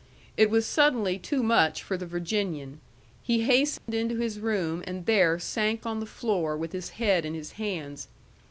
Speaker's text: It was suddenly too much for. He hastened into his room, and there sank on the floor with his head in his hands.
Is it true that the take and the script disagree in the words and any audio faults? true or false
true